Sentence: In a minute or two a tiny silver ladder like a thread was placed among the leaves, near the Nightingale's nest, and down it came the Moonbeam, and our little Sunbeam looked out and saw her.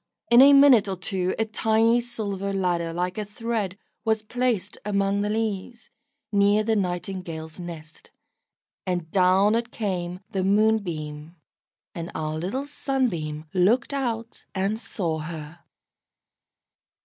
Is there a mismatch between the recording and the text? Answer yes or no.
no